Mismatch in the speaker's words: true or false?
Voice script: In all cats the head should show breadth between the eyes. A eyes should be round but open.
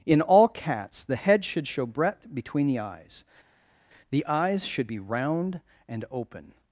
true